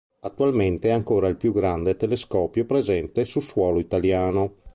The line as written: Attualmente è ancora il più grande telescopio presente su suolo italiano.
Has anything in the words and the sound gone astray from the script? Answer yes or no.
no